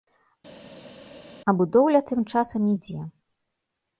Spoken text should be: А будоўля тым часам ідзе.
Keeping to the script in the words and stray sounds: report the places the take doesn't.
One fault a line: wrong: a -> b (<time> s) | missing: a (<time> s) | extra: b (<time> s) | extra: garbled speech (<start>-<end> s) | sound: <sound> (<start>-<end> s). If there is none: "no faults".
no faults